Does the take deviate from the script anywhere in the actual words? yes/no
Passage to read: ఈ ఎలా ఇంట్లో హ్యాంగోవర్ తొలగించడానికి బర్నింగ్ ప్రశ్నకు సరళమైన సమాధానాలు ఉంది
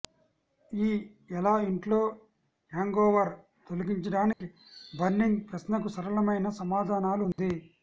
no